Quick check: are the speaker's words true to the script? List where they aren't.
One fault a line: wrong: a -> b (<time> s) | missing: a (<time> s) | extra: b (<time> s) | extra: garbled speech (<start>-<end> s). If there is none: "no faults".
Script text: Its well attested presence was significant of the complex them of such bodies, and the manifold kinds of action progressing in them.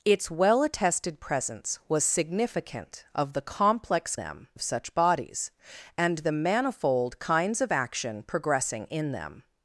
no faults